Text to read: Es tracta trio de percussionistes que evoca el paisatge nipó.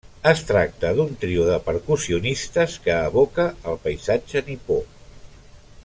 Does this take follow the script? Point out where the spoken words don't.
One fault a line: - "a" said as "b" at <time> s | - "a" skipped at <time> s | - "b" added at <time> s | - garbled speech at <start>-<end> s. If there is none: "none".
- "d'un" added at 1.0 s